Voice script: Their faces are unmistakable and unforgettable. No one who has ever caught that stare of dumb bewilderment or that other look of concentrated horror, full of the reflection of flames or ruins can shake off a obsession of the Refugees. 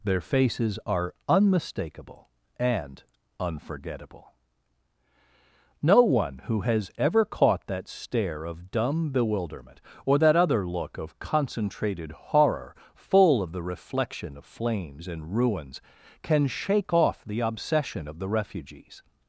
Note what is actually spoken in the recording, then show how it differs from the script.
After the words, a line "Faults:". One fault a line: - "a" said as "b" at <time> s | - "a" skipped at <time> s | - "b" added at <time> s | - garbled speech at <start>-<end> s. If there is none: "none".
Their faces are unmistakable and unforgettable. No one who has ever caught that stare of dumb bewilderment or that other look of concentrated horror, full of the reflection of flames and ruins can shake off the obsession of the Refugees.
Faults:
- "or" said as "and" at 15.1 s
- "a" said as "the" at 17.3 s